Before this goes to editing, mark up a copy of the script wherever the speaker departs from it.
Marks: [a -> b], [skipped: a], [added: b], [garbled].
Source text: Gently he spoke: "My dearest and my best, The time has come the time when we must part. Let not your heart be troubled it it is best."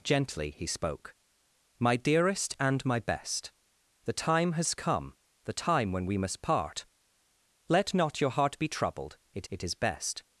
Gently he spoke: "My dearest and my best, The time has come the time when we must part. Let not your heart be troubled it it is best."